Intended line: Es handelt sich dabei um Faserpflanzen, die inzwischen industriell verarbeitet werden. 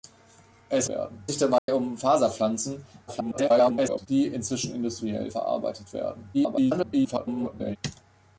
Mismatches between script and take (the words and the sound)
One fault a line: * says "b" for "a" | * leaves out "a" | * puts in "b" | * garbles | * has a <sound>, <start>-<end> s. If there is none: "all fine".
* says "werden" for "handelt"
* has a dropout, 1.6-1.7 s
* garbles
* garbles